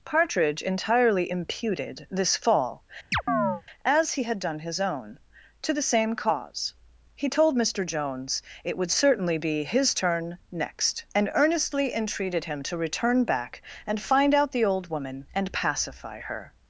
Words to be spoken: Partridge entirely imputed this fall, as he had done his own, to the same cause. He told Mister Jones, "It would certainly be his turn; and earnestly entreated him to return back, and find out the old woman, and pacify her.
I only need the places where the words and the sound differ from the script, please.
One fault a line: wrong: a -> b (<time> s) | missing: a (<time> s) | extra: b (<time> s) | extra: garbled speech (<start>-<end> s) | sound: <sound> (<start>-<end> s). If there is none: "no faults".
sound: chirp (3.1-3.6 s)
extra: next (10.5 s)